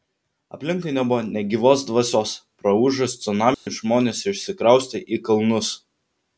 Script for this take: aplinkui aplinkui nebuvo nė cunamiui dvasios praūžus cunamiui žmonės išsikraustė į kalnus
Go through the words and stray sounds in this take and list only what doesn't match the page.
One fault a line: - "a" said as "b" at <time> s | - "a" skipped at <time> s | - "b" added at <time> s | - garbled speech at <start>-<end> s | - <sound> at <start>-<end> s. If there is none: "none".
- "aplinkui" skipped at 0.9 s
- "cunamiui" said as "gyvos" at 1.5 s
- dropout at 3.5-3.7 s